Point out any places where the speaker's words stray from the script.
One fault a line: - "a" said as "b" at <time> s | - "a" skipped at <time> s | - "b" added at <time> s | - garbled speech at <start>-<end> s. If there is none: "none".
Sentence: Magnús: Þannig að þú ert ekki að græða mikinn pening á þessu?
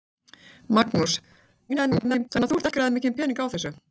- garbled speech at 1.7-2.3 s
- "ekki" skipped at 2.7 s